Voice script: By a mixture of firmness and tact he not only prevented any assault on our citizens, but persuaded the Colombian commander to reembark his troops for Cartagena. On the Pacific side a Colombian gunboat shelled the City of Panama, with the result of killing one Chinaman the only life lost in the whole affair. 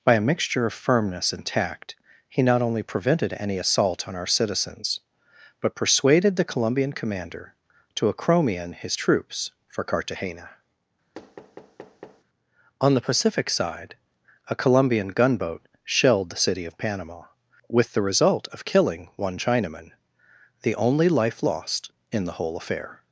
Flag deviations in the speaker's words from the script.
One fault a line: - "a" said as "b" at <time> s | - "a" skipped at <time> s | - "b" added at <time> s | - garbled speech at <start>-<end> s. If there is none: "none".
- "reembark" said as "acromion" at 8.1 s